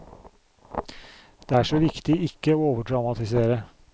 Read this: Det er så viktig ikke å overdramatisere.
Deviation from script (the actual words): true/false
false